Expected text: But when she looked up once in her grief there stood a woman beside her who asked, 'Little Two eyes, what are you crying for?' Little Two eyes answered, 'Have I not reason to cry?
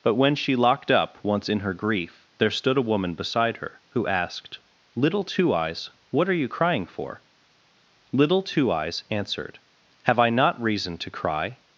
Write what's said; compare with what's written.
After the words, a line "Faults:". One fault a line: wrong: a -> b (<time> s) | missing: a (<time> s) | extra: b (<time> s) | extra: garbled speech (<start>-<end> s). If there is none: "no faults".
But when she locked up once in her grief there stood a woman beside her who asked, 'Little Two eyes, what are you crying for?' Little Two eyes answered, 'Have I not reason to cry?
Faults:
wrong: looked -> locked (0.6 s)